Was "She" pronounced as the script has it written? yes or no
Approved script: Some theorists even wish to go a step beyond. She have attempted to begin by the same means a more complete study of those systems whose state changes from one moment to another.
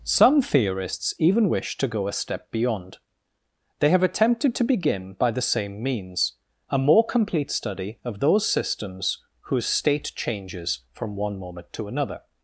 no